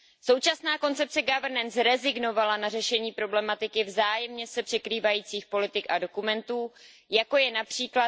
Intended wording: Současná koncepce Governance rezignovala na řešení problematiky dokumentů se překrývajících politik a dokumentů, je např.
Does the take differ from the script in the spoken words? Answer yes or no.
yes